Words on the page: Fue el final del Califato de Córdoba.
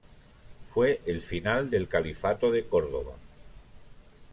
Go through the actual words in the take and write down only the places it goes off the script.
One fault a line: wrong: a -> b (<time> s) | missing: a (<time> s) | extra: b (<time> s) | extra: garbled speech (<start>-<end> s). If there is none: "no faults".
no faults